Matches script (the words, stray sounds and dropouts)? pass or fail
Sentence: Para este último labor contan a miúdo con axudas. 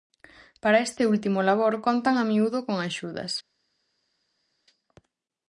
pass